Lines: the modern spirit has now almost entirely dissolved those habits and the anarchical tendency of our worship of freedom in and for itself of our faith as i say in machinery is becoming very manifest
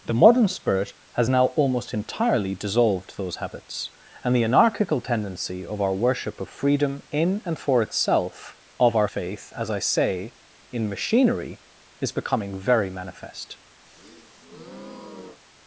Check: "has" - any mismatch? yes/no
no